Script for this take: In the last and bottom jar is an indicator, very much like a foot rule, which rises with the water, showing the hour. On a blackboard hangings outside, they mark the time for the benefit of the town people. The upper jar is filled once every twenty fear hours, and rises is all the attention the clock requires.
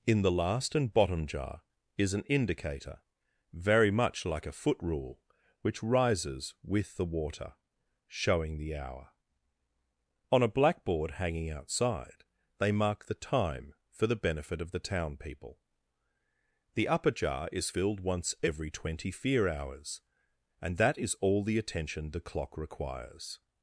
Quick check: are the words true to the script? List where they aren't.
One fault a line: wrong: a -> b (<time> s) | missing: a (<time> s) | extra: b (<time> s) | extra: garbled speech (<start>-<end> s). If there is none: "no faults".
wrong: hangings -> hanging (11.1 s)
wrong: rises -> that (20.8 s)